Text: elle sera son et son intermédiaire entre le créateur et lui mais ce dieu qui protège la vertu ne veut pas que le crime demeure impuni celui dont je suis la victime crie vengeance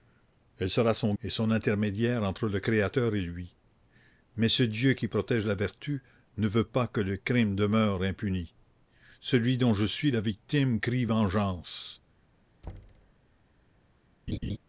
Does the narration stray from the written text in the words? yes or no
no